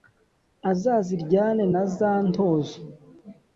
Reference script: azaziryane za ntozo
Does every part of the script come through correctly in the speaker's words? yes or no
no